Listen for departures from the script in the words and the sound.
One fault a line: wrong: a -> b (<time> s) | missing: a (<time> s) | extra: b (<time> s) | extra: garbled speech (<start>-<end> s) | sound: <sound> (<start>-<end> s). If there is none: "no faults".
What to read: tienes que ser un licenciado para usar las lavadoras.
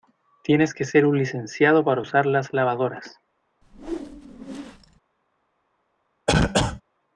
sound: whoosh (3.6-5.0 s)
sound: cough (6.3-6.8 s)